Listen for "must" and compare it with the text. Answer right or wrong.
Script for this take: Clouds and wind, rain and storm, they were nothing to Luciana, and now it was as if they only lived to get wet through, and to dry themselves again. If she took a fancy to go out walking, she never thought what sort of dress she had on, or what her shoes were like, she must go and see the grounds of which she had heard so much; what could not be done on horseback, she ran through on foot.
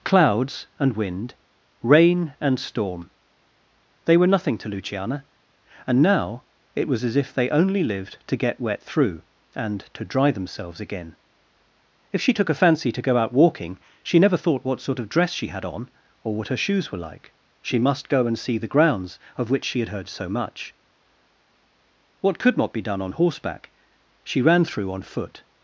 right